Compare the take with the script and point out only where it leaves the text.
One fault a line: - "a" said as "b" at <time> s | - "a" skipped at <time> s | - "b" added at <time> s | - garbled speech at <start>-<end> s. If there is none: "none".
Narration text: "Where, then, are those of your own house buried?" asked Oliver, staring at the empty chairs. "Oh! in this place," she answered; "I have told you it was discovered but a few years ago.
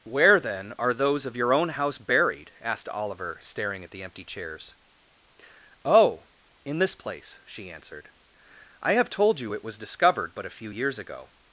none